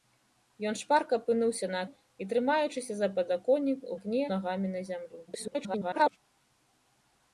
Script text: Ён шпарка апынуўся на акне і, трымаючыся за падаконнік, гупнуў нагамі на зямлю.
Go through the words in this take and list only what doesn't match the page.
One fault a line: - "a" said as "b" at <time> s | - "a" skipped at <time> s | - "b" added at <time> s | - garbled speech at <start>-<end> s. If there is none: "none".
- "акне" skipped at 1.8 s
- "гупнуў" said as "акне" at 4.0 s
- garbled speech at 5.3-6.2 s